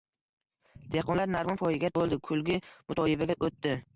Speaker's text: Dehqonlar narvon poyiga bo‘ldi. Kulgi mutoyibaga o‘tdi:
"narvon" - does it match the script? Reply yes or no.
yes